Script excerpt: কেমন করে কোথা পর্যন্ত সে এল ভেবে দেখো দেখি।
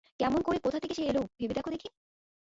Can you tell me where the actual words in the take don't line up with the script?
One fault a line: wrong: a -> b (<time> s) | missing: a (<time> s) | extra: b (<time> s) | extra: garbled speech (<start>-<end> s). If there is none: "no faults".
wrong: পর্যন্ত -> থেকে (0.8 s)